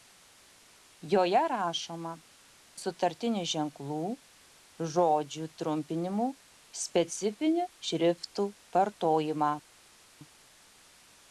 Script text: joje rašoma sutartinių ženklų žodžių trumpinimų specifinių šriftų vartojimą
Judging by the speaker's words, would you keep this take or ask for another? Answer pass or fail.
pass